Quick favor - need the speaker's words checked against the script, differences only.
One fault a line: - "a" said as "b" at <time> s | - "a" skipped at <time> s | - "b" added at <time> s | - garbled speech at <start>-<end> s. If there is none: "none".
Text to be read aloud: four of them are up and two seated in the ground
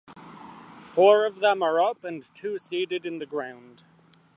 none